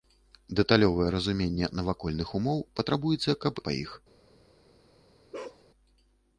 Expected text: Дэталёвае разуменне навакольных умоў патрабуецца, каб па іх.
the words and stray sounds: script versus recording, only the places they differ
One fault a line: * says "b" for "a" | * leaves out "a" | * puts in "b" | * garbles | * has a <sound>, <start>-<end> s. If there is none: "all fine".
* has a bark, 5.3-5.6 s